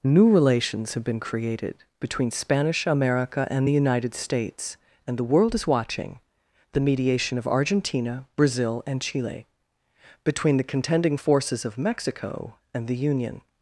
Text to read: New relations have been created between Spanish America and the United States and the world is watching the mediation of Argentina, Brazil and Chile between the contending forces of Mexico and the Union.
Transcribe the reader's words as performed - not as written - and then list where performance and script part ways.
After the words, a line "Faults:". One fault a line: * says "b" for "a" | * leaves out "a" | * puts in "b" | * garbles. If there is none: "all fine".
New relations have been created between Spanish America and the United States and the world is watching the mediation of Argentina, Brazil and Chile between the contending forces of Mexico and the Union.
Faults:
all fine